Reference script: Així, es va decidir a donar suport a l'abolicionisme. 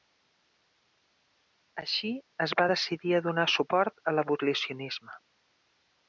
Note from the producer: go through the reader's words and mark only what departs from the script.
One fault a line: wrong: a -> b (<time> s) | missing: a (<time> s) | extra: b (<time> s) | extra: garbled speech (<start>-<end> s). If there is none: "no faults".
no faults